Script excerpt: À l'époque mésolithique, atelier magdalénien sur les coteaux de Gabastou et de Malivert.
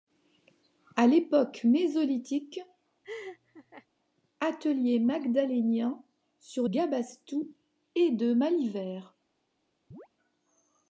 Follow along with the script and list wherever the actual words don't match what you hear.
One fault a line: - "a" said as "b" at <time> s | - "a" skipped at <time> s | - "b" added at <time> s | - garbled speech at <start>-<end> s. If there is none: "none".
- "les coteaux de" skipped at 6.7 s